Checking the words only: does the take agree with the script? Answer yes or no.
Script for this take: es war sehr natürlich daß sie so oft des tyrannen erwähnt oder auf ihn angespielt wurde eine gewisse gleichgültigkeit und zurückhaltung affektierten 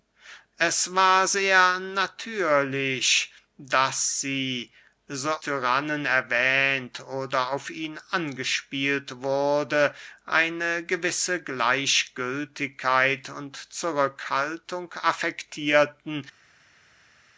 no